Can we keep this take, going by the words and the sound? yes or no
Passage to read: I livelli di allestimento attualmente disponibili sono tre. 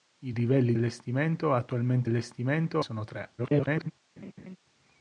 no